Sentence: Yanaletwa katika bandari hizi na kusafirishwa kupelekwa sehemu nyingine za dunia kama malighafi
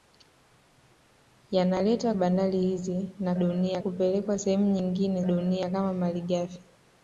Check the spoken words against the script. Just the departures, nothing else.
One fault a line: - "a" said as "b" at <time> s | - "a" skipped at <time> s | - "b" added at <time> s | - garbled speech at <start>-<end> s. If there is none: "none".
- "katika" skipped at 2.1 s
- "kusafirishwa" said as "dunia" at 3.4 s
- "za" skipped at 5.2 s